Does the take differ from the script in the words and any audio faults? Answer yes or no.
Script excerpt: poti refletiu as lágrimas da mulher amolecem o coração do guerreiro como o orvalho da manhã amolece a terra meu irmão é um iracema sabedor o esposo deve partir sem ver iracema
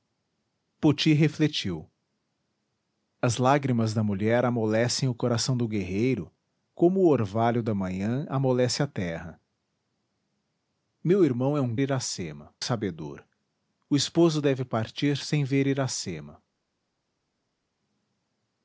no